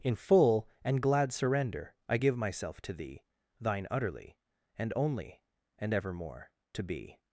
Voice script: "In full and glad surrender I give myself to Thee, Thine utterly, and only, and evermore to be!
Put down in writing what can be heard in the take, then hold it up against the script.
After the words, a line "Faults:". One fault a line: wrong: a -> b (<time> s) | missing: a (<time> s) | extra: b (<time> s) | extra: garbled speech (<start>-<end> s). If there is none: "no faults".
"In full and glad surrender I give myself to Thee, Thine utterly, and only, and evermore to be!
Faults:
no faults